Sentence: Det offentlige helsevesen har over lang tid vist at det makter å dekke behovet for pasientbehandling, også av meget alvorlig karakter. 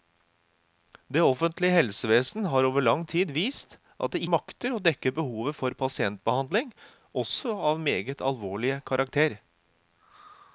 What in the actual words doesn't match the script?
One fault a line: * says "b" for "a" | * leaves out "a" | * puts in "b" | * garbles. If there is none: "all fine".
all fine